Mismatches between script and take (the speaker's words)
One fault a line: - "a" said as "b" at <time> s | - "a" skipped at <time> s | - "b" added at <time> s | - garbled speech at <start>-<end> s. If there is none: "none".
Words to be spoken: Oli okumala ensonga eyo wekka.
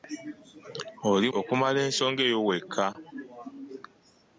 none